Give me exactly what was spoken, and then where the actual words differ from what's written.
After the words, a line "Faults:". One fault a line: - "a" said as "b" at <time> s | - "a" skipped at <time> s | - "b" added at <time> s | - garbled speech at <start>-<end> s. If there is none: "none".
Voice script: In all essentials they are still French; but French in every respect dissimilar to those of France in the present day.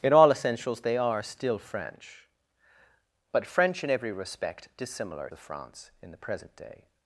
In all essentials they are still French; but French in every respect dissimilar of France in the present day.
Faults:
- "to those" skipped at 5.3 s